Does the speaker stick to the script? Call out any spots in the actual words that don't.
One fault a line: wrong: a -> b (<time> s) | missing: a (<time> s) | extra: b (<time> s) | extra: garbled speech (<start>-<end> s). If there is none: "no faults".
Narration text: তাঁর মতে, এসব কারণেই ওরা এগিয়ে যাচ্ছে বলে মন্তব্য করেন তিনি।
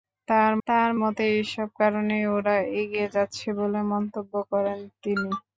extra: তাঁর (0.7 s)